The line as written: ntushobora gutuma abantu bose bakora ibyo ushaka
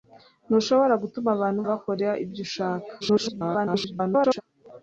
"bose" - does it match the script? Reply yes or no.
no